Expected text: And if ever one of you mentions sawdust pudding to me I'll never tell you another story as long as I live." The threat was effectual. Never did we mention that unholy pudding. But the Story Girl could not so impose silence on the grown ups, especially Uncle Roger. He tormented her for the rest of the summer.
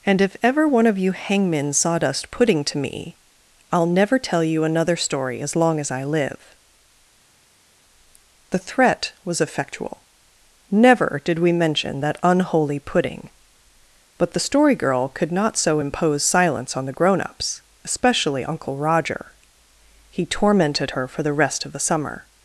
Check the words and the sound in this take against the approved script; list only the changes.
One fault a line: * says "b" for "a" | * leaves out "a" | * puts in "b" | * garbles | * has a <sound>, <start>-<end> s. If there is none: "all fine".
* says "hangmen" for "mentions"